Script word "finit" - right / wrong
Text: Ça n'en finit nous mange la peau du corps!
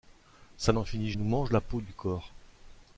right